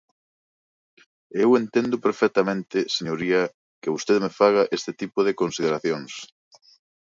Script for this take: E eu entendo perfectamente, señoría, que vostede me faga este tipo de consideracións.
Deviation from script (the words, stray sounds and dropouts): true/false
false